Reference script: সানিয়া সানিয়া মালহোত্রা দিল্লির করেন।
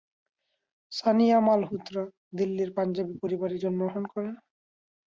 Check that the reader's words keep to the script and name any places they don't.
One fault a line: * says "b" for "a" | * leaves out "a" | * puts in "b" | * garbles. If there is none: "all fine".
* leaves out "সানিয়া"
* puts in "পাঞ্জাবি পরিবারে জন্মগ্রহণ"